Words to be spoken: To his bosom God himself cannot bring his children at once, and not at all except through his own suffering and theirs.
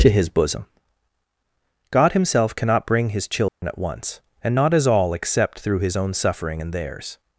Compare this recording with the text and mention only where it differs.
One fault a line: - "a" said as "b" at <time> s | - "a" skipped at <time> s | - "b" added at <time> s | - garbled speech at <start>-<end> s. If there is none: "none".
- "at" said as "as" at 4.7 s